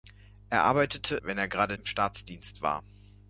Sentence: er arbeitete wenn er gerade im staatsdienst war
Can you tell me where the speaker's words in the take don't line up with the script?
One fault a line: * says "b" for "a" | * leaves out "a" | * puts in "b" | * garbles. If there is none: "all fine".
all fine